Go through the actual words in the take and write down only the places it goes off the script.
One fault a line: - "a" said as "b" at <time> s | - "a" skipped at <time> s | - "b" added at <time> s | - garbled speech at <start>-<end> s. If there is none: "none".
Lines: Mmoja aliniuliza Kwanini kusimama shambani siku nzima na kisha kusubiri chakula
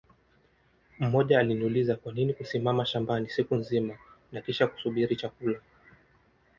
none